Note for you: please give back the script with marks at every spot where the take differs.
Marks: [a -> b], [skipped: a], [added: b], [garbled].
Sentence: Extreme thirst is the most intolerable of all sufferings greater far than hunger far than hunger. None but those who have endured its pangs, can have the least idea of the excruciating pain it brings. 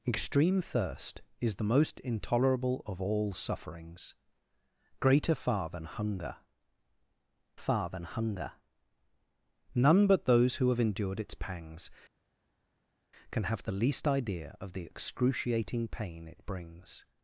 Extreme thirst is the most intolerable of all sufferings greater far than hunger far than hunger. None but those who have endured its pangs, can have the least idea of the excruciating pain it brings.